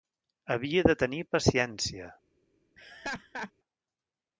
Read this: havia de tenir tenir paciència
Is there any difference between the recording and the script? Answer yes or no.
yes